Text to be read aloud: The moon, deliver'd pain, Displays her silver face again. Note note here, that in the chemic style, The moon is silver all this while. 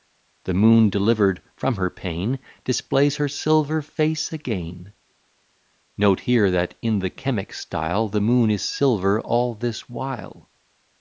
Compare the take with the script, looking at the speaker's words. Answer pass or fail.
fail